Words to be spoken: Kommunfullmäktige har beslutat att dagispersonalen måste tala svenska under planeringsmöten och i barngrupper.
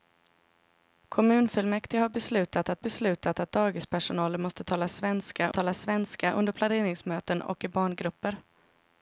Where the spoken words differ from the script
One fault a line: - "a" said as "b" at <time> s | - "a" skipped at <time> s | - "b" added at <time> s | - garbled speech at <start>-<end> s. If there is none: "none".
- "beslutat att" added at 2.8 s
- "tala svenska" added at 5.5 s